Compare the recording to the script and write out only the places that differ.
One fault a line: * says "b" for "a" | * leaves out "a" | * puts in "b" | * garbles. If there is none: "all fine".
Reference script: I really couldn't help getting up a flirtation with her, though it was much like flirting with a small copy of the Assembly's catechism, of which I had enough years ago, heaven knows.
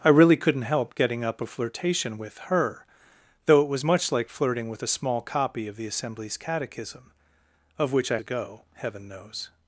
* leaves out "had enough years"